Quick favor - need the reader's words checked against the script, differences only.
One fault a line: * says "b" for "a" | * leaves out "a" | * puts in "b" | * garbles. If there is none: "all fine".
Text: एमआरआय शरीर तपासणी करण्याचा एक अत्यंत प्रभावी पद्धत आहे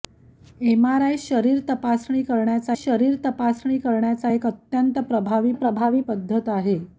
* puts in "शरीर तपासणी करण्याचा"
* puts in "प्रभावी"